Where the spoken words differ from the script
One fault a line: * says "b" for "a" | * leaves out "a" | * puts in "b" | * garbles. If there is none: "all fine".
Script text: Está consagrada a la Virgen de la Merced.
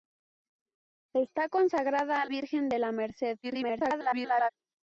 * leaves out "la"
* garbles